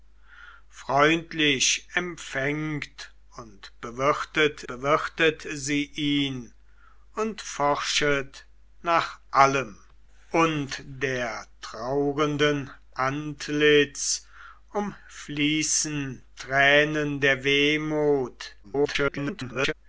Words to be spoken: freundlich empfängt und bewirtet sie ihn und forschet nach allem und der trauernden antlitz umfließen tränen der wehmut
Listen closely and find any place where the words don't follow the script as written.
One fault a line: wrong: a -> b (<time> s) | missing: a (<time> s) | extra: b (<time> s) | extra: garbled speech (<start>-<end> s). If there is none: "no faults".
extra: bewirtet (4.7 s)
extra: garbled speech (18.6-19.7 s)